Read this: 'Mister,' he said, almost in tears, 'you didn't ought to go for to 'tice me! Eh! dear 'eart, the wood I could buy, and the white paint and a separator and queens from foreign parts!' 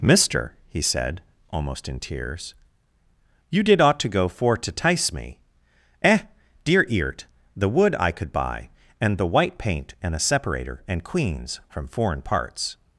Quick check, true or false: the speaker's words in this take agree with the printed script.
false